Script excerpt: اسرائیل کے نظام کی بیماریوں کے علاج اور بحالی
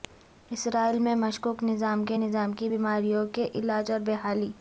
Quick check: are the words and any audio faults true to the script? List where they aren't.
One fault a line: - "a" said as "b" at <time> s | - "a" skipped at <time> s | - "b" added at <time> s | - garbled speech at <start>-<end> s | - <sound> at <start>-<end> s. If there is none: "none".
- "میں مشکوک نظام" added at 1.0 s